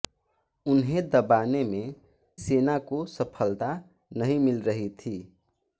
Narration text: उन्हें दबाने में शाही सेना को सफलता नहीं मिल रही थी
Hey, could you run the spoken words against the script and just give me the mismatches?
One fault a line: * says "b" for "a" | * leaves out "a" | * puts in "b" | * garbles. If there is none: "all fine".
* leaves out "शाही"